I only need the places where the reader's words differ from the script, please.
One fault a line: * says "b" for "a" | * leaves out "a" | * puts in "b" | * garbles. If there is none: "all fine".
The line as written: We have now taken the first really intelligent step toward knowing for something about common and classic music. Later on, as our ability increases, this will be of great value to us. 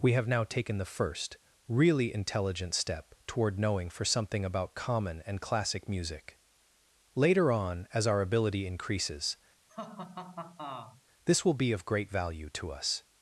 all fine